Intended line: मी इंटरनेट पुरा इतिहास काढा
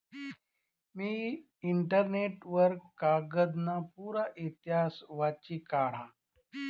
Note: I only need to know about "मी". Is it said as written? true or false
true